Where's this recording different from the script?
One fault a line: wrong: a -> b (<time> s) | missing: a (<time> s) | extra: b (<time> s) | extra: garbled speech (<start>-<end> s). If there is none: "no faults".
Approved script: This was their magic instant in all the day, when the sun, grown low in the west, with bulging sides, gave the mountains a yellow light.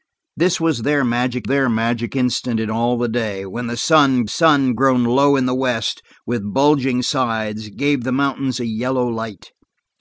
extra: their magic (1.4 s)
extra: sun (4.3 s)